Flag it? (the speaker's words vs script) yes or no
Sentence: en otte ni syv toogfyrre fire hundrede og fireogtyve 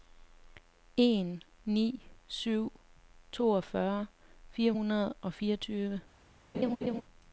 yes